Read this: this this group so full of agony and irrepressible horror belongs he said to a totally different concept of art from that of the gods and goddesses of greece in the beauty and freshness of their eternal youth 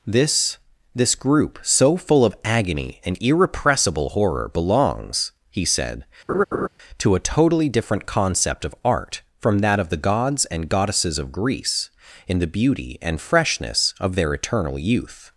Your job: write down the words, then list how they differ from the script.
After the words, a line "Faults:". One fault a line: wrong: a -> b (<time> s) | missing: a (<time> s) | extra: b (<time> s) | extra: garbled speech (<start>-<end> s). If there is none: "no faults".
this this group so full of agony and irrepressible horror belongs he said to a totally different concept of art from that of the gods and goddesses of greece in the beauty and freshness of their eternal youth
Faults:
no faults